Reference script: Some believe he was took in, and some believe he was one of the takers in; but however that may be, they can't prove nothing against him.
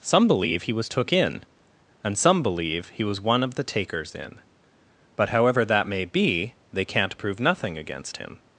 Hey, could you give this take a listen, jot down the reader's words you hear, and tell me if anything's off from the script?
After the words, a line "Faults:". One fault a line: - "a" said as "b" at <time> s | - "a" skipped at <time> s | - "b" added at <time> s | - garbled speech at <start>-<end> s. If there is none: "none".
Some believe he was took in, and some believe he was one of the takers in; but however that may be, they can't prove nothing against him.
Faults:
none